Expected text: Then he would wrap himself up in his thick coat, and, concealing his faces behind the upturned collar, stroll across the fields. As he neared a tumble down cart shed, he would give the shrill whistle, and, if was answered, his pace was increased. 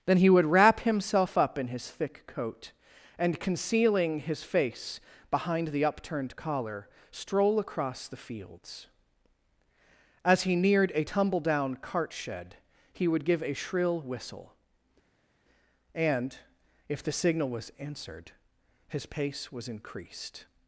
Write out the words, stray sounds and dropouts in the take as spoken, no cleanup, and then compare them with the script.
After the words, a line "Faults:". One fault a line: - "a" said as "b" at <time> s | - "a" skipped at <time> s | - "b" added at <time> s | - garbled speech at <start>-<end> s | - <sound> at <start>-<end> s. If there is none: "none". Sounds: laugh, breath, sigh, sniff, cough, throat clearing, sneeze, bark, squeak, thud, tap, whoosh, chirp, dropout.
Then he would wrap himself up in his thick coat, and, concealing his face behind the upturned collar, stroll across the fields. As he neared a tumble down cart shed, he would give a shrill whistle, and, if the signal was answered, his pace was increased.
Faults:
- "faces" said as "face" at 4.4 s
- "the" said as "a" at 13.4 s
- "the signal" added at 17.0 s